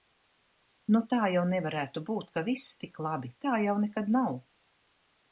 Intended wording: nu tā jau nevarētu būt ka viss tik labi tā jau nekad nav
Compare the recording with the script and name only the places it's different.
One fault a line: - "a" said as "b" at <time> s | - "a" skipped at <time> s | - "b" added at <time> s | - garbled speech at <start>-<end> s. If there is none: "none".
none